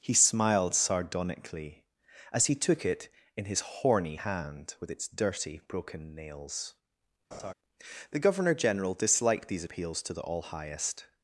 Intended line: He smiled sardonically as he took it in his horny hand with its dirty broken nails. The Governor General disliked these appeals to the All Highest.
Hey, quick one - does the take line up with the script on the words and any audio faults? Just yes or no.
no